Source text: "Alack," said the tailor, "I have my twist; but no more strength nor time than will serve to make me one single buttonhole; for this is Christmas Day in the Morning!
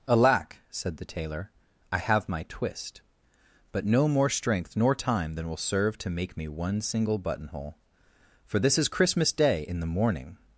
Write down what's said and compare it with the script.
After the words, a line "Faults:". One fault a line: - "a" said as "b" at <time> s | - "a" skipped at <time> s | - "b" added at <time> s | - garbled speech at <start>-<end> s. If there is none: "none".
"Alack," said the tailor, "I have my twist; but no more strength nor time than will serve to make me one single buttonhole; for this is Christmas Day in the Morning!
Faults:
none